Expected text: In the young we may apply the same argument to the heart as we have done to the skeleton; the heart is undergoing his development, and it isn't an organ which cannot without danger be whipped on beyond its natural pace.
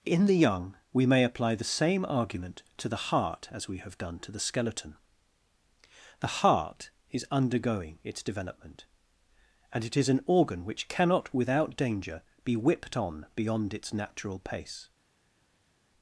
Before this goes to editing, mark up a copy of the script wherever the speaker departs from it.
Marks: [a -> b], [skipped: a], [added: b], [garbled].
In the young we may apply the same argument to the heart as we have done to the skeleton; the heart is undergoing [his -> its] development, and it [isn't -> is] an organ which cannot without danger be whipped on beyond its natural pace.